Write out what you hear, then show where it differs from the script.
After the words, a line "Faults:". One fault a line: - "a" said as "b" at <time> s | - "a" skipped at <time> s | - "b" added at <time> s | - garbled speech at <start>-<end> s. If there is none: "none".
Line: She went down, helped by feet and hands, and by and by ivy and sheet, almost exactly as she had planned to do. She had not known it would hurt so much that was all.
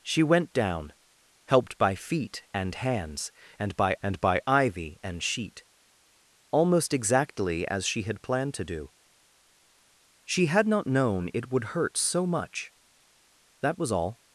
She went down, helped by feet and hands, and by and by ivy and sheet, almost exactly as she had planned to do. She had not known it would hurt so much that was all.
Faults:
none